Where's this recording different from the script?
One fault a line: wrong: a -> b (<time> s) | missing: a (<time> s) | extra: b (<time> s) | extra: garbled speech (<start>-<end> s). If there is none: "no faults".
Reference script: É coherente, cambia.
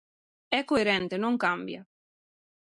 extra: non (1.2 s)